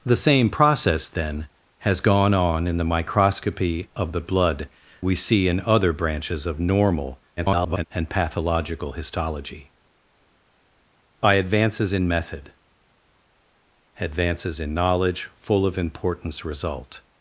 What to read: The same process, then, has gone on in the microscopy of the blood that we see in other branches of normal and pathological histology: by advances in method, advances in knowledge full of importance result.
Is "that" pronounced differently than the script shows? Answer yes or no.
yes